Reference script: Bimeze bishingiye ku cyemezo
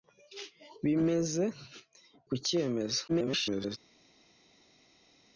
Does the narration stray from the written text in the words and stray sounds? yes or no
yes